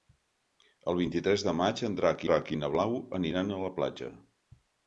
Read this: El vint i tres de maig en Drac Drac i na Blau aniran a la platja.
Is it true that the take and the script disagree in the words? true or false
false